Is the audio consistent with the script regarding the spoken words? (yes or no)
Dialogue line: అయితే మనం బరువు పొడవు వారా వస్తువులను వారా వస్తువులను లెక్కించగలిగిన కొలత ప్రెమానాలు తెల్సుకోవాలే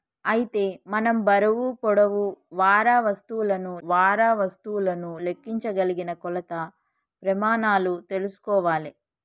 yes